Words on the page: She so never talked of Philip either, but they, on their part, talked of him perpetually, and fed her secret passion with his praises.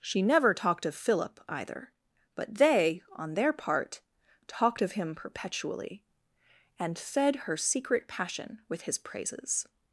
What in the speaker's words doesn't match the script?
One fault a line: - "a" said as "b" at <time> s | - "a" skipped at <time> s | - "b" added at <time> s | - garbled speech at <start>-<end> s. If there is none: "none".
- "so" skipped at 0.2 s